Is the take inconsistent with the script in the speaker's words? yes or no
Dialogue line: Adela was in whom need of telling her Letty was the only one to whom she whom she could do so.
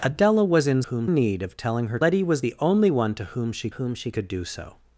no